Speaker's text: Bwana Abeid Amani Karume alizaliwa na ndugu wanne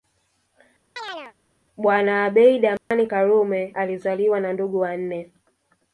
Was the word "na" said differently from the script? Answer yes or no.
no